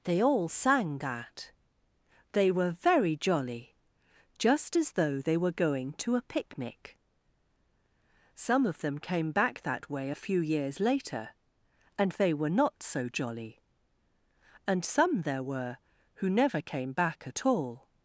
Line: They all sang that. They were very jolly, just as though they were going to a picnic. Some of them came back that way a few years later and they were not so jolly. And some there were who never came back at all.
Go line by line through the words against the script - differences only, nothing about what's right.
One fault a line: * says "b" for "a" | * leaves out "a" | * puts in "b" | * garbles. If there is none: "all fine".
all fine